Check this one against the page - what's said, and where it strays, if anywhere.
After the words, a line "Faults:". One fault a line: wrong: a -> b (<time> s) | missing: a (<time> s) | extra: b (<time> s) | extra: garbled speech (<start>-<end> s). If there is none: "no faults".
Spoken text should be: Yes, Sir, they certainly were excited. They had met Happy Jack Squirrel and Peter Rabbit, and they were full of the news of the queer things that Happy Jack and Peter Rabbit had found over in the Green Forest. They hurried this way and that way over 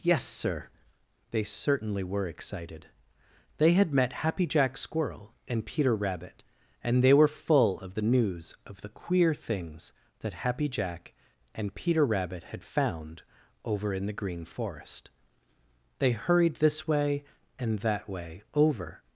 Yes, Sir, they certainly were excited. They had met Happy Jack Squirrel and Peter Rabbit, and they were full of the news of the queer things that Happy Jack and Peter Rabbit had found over in the Green Forest. They hurried this way and that way over
Faults:
no faults